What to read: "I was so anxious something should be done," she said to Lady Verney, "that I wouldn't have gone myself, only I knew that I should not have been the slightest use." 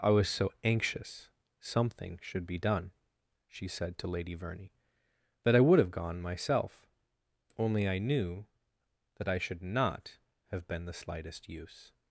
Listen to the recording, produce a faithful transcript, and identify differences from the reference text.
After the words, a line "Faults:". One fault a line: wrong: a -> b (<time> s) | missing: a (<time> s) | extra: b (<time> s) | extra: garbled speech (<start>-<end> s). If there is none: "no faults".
"I was so anxious something should be done," she said to Lady Verney, "that I would have gone myself, only I knew that I should not have been the slightest use."
Faults:
wrong: wouldn't -> would (5.6 s)